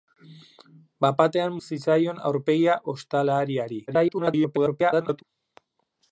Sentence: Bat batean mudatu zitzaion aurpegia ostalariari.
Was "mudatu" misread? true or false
true